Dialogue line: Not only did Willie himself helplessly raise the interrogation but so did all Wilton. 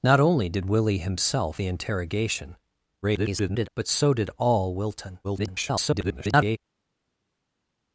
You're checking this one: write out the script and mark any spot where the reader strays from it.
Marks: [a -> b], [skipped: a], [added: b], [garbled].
Not only did Willie himself [skipped: helplessly raise] the interrogation [garbled] but so did all Wilton. [garbled]